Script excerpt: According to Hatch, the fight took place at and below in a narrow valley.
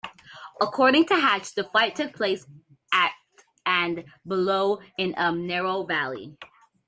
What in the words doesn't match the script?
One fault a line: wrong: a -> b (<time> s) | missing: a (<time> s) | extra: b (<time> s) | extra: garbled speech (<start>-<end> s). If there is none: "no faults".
no faults